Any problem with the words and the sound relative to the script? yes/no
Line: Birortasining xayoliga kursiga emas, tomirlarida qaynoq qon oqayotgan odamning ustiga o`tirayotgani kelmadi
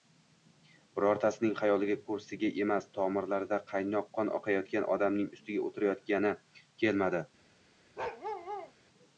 yes